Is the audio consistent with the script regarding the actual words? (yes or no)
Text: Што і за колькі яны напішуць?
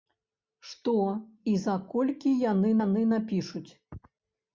no